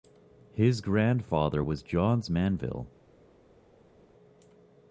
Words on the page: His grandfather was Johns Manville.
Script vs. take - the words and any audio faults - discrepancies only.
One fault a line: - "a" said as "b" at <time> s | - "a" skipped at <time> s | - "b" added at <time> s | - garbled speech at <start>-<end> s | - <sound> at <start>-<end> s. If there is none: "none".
none